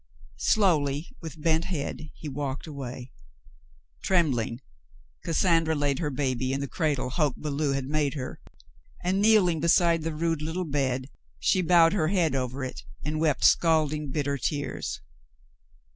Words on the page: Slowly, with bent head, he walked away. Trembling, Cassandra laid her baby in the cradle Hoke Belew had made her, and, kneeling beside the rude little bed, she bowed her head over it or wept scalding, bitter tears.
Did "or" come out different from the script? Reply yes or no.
yes